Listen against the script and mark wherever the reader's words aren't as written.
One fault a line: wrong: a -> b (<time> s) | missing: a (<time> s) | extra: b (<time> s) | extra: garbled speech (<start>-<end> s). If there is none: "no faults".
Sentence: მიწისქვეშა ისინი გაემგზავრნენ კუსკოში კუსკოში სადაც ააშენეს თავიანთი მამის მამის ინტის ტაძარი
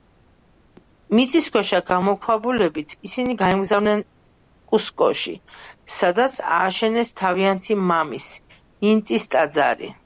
extra: გამოქვაბულებით (1.9 s)
missing: კუსკოში (5.4 s)
missing: მამის (8.3 s)